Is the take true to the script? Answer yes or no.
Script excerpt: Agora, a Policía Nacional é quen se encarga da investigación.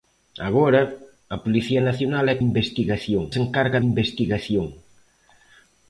no